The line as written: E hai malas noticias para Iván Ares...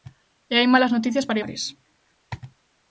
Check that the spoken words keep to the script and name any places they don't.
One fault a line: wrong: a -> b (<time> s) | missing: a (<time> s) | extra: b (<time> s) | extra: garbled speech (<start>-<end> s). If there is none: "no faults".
missing: Iván (1.4 s)